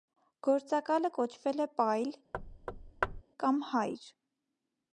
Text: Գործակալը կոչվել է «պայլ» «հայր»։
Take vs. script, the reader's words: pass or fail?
fail